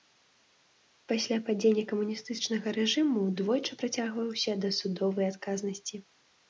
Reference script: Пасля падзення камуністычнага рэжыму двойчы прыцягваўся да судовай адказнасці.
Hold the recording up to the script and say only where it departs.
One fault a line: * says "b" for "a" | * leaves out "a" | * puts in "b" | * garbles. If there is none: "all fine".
all fine